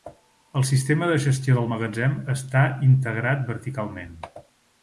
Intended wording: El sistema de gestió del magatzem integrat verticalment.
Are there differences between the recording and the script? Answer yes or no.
yes